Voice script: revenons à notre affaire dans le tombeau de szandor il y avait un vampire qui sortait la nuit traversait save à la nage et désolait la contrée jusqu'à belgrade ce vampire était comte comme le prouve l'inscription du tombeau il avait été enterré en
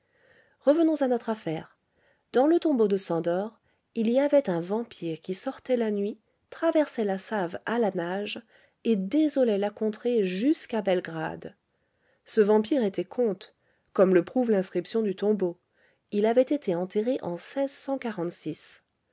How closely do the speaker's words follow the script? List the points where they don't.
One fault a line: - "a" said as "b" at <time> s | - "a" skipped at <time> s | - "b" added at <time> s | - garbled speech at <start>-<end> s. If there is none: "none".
- "la" added at 7.0 s